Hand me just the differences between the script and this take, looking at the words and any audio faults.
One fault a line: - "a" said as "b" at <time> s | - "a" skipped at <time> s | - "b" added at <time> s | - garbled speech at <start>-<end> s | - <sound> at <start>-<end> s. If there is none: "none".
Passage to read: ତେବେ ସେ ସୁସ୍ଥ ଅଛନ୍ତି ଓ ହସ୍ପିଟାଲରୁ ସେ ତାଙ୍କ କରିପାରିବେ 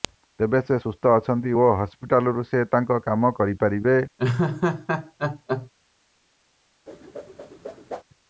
- "କାମ" added at 3.0 s
- laugh at 4.2-5.7 s
- whoosh at 6.9-8.0 s